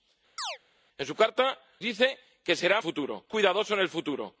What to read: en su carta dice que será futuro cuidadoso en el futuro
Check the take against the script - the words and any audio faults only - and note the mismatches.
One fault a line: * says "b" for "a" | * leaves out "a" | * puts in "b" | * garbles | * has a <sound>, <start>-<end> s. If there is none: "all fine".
* has a chirp, 0.4-0.6 s